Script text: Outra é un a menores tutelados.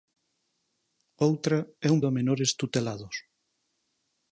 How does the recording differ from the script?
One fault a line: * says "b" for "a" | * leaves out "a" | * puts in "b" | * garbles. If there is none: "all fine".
all fine